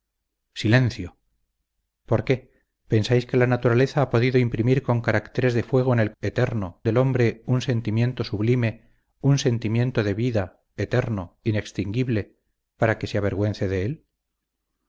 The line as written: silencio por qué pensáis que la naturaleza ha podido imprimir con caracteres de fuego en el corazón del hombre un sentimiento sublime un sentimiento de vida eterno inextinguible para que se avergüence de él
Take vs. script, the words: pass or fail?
fail